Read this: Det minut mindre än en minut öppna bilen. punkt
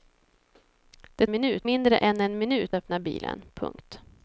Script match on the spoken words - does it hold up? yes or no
yes